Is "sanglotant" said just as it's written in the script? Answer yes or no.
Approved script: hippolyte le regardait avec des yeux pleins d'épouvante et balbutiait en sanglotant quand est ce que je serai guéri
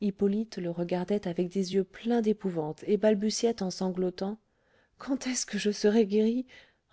yes